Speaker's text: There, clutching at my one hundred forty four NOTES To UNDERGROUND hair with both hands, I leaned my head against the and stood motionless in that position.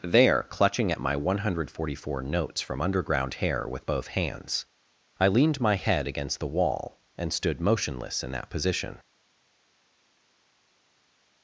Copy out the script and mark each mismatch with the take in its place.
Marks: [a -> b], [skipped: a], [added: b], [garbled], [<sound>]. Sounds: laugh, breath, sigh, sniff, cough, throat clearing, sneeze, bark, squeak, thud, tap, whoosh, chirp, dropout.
There, clutching at my one hundred forty four NOTES [To -> FROM] UNDERGROUND hair with both hands, I leaned my head against the [added: wall] and stood motionless in that position.